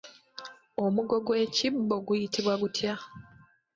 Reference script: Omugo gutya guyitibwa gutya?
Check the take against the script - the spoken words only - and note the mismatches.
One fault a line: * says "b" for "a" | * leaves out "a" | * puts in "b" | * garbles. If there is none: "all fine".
* says "gw'ekibbo" for "gutya"